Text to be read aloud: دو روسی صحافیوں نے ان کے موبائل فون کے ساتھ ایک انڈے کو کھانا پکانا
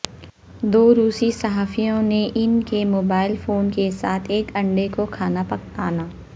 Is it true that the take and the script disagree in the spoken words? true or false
false